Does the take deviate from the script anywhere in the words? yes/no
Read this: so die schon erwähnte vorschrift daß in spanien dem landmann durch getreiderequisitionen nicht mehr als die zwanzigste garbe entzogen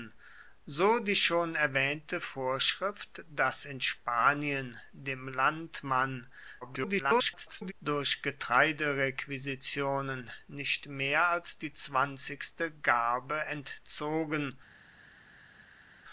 yes